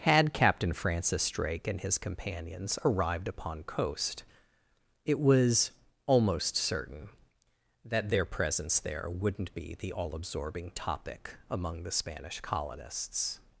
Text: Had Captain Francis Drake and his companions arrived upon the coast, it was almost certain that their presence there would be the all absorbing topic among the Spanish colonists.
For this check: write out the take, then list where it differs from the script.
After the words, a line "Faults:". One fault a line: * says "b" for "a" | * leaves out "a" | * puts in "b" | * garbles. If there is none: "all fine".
Had Captain Francis Drake and his companions arrived upon coast, it was almost certain that their presence there wouldn't be the all absorbing topic among the Spanish colonists.
Faults:
* leaves out "the"
* says "wouldn't" for "would"